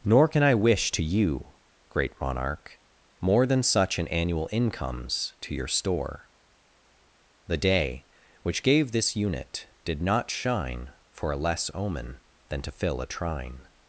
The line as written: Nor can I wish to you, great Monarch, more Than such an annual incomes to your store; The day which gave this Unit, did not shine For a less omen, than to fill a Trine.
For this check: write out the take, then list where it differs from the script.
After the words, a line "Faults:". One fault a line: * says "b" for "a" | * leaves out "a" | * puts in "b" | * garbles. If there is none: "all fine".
Nor can I wish to you, great Monarch, more Than such an annual incomes to your store; The day which gave this Unit, did not shine For a less omen, than to fill a Trine.
Faults:
all fine